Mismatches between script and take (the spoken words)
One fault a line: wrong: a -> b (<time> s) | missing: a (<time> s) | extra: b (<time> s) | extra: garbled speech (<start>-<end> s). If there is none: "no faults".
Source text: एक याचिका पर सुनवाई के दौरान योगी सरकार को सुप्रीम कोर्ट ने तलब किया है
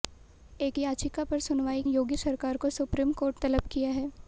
missing: के दौरान (1.8 s)
missing: ने (3.4 s)